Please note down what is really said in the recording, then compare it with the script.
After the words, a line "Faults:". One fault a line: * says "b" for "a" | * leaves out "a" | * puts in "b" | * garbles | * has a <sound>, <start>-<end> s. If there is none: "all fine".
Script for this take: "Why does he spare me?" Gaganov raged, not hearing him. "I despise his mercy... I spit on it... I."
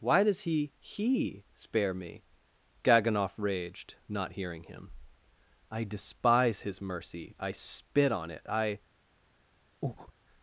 "Why does he he spare me?" Gaganov raged, not hearing him. "I despise his mercy... I spit on it... I."
Faults:
* puts in "he"
* has a breath, 9.8-10.1 s